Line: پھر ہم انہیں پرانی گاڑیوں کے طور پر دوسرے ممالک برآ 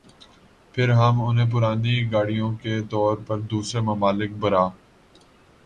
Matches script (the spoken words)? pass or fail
pass